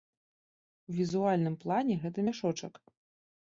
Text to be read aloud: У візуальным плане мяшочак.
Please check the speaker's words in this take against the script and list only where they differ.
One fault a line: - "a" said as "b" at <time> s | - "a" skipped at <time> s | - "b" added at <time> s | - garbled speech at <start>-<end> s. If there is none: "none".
- "гэта" added at 2.1 s